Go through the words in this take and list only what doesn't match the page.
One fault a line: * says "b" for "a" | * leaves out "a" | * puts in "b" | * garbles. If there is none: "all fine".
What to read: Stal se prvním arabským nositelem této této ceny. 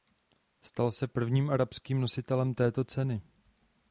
* leaves out "této"